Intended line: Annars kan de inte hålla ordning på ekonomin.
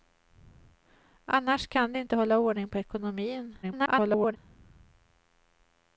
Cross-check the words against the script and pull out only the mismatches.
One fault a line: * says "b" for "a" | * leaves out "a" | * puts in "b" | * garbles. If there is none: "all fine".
* garbles